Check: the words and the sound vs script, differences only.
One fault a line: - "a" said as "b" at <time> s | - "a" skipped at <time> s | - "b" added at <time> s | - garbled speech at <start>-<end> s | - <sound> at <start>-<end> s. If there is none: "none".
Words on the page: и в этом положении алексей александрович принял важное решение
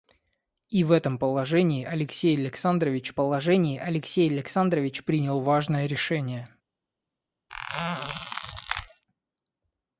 - "положении алексей александрович" added at 3.2 s
- squeak at 7.5-9.0 s